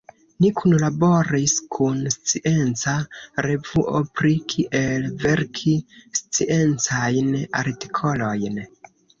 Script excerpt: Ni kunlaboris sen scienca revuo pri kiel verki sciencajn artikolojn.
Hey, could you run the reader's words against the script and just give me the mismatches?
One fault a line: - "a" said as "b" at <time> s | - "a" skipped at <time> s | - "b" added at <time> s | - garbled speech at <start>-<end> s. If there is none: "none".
- "sen" said as "kun" at 1.8 s